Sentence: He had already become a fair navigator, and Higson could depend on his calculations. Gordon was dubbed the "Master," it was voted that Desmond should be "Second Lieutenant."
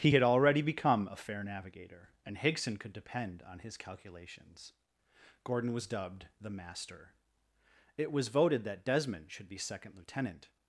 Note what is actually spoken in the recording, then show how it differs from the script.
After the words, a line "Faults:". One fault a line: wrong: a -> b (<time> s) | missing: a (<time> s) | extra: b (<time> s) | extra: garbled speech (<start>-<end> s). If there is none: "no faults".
He had already become a fair navigator, and Higson could depend on his calculations. Gordon was dubbed the "Master," it was voted that Desmond should be "Second Lieutenant."
Faults:
no faults